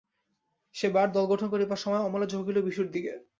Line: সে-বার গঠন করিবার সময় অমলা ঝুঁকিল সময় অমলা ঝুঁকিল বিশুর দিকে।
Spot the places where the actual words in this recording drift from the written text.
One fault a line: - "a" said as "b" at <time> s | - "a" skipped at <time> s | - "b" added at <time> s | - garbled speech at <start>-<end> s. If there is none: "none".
- "দল" added at 1.1 s
- "সময় অমলা ঝুঁকিল" skipped at 2.6 s